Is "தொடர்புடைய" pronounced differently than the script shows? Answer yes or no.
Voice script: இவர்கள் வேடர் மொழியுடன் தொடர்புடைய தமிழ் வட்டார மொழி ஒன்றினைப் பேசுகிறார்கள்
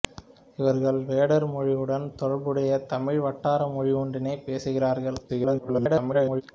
no